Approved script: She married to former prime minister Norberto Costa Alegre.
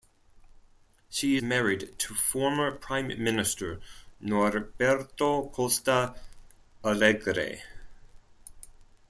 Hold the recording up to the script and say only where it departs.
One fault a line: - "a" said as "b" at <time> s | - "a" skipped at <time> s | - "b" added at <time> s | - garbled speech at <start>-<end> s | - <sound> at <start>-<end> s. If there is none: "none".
none